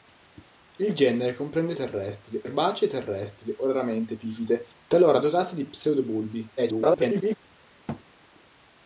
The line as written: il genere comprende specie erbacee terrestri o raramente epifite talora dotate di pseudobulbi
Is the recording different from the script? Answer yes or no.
yes